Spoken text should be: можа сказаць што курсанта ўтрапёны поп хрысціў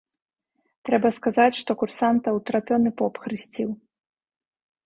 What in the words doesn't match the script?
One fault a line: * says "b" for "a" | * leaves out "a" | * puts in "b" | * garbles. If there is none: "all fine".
* says "трэба" for "можа"